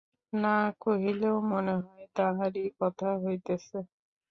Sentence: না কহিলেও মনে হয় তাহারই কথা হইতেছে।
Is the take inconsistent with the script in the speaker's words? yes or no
no